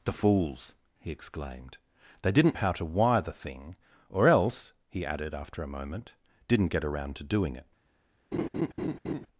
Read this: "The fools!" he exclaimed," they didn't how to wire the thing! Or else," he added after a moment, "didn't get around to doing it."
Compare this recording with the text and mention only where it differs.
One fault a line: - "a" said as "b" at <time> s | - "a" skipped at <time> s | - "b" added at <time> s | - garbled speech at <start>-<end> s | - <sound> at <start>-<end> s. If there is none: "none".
- laugh at 8.3-9.3 s